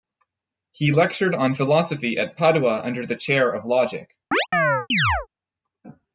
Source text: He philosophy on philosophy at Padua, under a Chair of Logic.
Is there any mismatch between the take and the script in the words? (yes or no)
yes